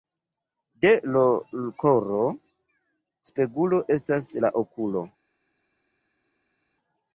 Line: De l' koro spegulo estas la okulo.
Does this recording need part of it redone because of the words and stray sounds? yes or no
no